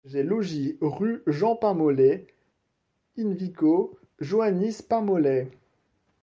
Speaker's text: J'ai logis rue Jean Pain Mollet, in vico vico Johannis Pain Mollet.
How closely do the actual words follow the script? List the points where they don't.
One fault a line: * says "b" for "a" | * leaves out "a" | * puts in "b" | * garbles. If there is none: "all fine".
* leaves out "vico"